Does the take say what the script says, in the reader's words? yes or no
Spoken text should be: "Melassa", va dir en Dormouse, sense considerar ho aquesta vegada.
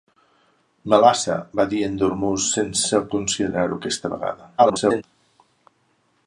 no